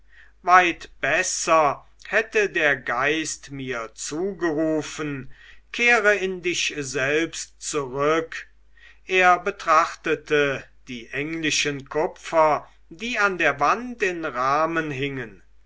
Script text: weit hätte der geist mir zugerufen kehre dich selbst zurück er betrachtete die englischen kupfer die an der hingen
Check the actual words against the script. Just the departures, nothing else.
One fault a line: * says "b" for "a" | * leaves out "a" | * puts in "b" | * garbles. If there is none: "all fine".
* puts in "besser"
* puts in "in"
* puts in "wand in rahmen"